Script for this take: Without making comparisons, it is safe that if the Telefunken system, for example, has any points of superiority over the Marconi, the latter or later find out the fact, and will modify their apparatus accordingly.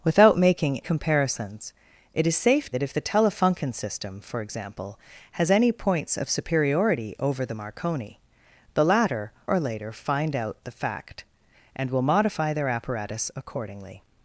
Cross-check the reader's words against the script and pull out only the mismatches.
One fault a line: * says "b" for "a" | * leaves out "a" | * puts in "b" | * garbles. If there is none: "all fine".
all fine